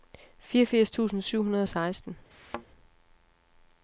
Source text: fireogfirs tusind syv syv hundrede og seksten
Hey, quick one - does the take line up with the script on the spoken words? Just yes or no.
no